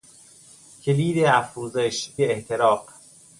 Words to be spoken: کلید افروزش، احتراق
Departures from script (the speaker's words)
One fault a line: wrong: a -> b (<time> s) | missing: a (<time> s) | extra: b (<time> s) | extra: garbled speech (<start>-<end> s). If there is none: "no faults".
no faults